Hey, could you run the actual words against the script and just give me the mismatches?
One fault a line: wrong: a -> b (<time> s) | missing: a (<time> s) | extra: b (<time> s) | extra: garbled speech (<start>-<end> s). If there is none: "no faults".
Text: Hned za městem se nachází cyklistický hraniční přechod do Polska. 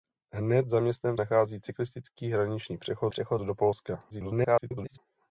missing: se (1.2 s)
extra: přechod (3.1 s)
extra: garbled speech (4.1-5.0 s)